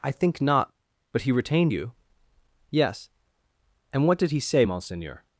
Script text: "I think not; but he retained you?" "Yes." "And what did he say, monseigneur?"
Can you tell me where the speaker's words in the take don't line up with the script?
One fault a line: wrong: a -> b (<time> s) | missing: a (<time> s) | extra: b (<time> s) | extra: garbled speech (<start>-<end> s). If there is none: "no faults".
no faults